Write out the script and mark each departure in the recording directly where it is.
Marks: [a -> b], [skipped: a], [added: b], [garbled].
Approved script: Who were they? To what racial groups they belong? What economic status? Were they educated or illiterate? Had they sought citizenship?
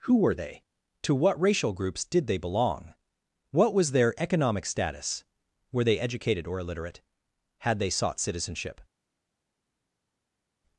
Who were they? To what racial groups [added: did] they belong? What [added: was their] economic status? Were they educated or illiterate? Had they sought citizenship?